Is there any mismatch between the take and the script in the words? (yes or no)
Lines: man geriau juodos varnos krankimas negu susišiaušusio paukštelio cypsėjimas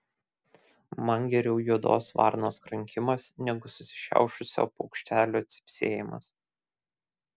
no